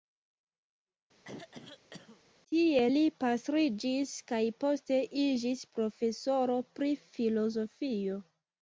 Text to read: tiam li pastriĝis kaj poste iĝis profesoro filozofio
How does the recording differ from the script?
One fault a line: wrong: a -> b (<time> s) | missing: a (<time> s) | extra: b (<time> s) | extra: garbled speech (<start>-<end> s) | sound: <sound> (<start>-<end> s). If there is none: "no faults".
sound: throat clearing (1.2-2.2 s)
wrong: tiam -> tie (2.5 s)
extra: pri (6.8 s)